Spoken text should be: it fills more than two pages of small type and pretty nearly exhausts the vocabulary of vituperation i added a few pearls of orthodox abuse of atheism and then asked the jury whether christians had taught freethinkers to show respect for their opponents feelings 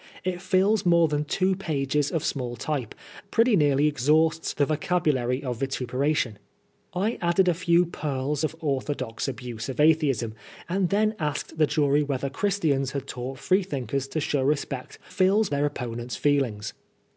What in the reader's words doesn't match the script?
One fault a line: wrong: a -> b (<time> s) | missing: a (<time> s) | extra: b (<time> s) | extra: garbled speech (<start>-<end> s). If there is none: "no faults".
missing: and (3.0 s)
wrong: for -> fills (15.1 s)